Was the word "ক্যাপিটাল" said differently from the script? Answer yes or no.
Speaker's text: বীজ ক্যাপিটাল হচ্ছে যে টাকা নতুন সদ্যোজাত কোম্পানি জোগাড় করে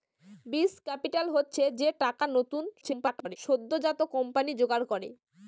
no